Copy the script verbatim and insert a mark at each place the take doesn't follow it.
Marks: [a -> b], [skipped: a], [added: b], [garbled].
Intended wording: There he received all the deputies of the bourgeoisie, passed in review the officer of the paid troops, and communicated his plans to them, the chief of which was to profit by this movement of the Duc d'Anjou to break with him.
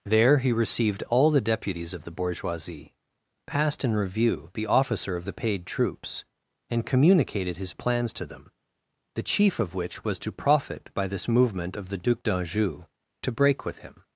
There he received all the deputies of the bourgeoisie, passed in review the officer of the paid troops, and communicated his plans to them, the chief of which was to profit by this movement of the Duc d'Anjou to break with him.